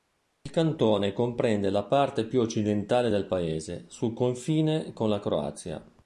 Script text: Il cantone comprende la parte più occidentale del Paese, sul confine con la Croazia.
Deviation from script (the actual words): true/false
false